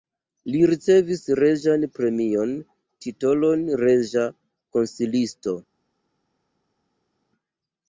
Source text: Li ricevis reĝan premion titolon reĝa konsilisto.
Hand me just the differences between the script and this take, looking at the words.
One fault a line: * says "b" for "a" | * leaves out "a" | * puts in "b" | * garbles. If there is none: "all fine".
all fine